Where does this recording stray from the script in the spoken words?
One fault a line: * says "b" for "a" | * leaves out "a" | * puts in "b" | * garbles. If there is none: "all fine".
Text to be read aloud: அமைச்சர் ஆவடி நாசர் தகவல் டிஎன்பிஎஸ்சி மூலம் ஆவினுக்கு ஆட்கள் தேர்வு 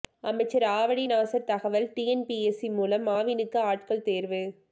all fine